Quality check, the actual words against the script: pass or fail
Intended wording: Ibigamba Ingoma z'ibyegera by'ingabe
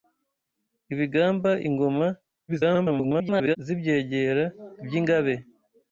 fail